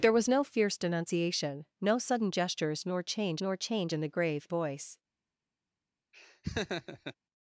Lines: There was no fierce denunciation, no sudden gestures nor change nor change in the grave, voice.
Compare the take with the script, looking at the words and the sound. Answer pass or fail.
fail